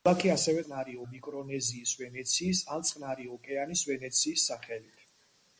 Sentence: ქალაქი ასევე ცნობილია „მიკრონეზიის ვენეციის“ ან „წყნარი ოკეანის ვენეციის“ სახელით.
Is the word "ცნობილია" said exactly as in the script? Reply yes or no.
no